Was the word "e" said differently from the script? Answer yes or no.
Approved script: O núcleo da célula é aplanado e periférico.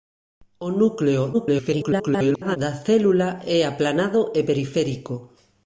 no